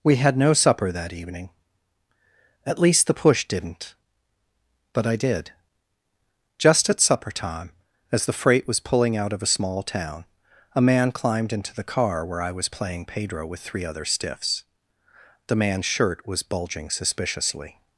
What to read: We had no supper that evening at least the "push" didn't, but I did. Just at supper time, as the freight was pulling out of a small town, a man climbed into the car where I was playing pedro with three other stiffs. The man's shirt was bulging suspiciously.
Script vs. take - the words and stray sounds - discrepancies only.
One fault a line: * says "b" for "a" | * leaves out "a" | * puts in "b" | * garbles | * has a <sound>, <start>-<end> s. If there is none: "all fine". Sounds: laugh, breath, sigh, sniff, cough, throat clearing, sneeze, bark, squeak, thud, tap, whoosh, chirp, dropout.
all fine